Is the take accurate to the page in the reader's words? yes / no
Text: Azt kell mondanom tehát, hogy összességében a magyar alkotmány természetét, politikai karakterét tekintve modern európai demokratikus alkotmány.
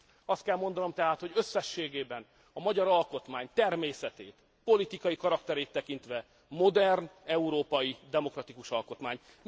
yes